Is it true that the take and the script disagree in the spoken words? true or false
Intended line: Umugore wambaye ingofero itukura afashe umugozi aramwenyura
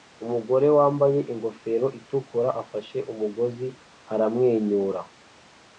false